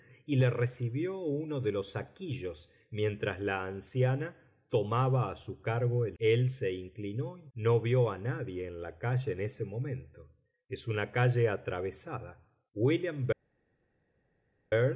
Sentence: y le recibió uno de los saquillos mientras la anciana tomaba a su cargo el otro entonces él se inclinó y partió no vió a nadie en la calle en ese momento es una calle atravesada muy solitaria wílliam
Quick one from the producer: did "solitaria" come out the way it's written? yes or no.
no